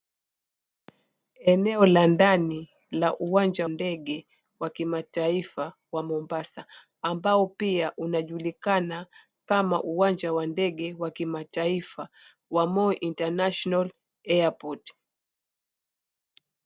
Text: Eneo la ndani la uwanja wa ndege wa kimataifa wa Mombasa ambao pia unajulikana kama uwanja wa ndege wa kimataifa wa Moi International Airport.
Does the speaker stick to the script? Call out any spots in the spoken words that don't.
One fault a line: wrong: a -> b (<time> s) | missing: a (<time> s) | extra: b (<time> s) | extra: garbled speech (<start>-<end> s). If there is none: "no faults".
missing: wa (3.7 s)